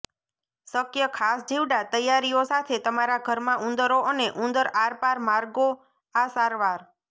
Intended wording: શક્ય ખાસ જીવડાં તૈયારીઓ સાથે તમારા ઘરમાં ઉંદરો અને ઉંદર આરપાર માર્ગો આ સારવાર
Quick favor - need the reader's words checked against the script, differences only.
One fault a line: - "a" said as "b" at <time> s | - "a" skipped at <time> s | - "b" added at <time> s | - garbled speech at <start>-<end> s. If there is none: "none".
none